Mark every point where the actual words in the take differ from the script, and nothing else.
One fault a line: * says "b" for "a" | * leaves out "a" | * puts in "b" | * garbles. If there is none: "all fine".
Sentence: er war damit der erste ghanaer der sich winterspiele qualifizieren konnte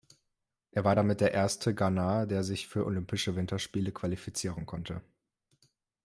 * puts in "für olympische"